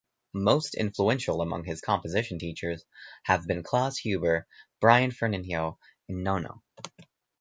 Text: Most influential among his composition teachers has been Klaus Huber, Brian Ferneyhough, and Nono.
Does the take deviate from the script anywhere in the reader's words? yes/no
yes